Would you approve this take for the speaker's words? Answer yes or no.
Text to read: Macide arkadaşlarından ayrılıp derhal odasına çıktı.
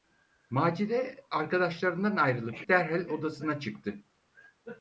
yes